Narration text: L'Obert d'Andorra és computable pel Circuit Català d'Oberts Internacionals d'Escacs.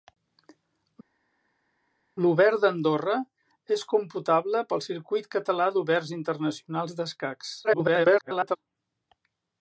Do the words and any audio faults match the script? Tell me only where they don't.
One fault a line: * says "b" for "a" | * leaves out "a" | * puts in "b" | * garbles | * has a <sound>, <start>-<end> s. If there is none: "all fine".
* garbles